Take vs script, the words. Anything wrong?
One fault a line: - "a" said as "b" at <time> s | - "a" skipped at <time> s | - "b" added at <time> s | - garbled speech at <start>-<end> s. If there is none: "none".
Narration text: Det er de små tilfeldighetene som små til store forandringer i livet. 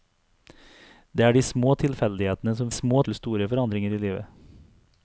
none